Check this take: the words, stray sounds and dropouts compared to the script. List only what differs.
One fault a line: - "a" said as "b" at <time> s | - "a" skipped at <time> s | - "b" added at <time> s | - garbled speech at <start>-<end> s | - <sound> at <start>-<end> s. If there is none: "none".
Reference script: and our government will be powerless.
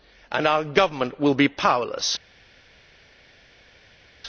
none